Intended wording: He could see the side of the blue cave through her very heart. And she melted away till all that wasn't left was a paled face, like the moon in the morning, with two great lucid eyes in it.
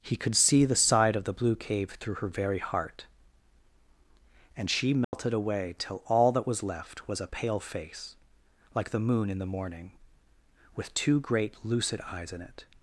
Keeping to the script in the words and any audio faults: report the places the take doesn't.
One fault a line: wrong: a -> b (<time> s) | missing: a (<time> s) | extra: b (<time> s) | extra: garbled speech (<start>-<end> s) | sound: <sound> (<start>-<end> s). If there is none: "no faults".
sound: dropout (5.0-5.1 s)
wrong: wasn't -> was (6.5 s)
wrong: paled -> pale (7.2 s)